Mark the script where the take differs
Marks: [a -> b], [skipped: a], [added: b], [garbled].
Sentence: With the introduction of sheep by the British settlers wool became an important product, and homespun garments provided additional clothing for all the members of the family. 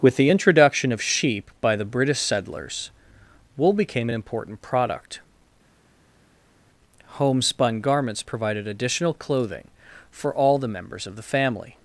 With the introduction of sheep by the British settlers wool became an important product, [skipped: and] homespun garments provided additional clothing for all the members of the family.